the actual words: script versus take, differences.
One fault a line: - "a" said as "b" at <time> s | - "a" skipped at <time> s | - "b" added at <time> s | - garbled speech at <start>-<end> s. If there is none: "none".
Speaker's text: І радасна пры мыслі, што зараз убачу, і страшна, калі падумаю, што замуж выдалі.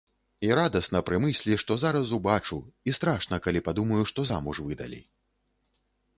none